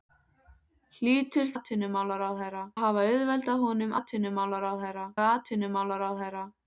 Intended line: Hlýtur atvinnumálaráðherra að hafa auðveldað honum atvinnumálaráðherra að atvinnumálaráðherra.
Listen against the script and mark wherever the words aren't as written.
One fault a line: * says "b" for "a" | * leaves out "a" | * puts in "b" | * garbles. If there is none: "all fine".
all fine